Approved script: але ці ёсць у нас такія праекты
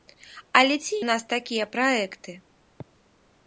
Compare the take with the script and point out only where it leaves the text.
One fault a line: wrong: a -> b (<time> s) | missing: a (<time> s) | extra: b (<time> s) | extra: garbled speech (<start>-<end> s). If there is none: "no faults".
missing: ёсць (0.9 s)